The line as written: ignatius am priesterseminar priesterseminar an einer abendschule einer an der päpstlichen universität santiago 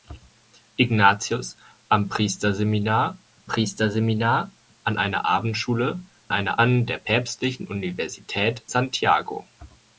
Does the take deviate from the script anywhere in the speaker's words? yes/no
no